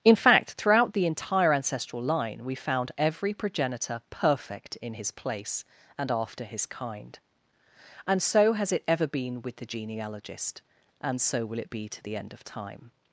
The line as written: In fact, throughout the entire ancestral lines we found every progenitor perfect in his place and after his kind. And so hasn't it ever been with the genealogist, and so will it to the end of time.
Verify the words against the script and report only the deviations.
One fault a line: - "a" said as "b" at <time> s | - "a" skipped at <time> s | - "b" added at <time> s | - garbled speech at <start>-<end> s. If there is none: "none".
- "lines" said as "line" at 2.0 s
- "hasn't" said as "has" at 8.5 s
- "be" added at 11.7 s